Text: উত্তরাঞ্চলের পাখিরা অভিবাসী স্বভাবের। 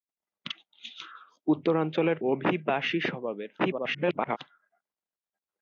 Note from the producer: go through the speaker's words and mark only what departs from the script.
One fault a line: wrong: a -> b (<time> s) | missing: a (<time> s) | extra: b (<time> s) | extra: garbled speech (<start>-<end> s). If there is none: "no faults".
missing: পাখিরা (2.2 s)
extra: garbled speech (3.6-4.4 s)